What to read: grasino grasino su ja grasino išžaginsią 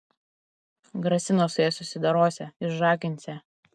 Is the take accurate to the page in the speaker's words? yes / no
no